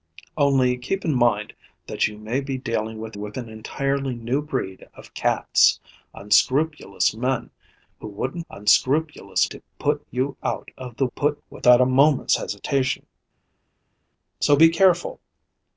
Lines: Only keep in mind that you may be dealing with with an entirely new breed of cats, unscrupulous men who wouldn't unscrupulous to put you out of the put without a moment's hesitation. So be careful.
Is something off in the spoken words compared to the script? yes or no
no